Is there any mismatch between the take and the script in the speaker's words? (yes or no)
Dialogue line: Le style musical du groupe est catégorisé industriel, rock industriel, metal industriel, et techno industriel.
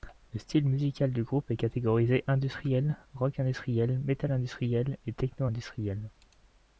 no